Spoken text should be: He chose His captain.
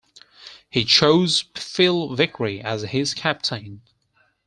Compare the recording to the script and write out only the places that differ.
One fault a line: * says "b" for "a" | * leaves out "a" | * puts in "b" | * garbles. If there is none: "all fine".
* puts in "Phil Vickery as"